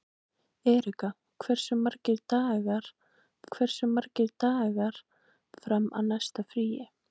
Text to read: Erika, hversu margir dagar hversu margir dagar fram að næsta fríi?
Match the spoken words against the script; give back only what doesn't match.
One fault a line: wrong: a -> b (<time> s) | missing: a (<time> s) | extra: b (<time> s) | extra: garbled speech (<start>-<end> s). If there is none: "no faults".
no faults